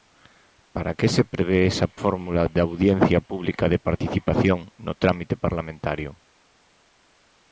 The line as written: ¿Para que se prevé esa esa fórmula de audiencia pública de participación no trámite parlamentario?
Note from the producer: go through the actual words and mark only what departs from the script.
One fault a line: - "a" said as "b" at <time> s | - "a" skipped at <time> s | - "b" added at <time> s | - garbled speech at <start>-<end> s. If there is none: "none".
- "esa" skipped at 1.9 s